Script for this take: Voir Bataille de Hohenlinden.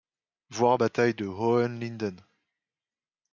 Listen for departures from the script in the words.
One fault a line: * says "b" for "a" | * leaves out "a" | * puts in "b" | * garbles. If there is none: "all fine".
all fine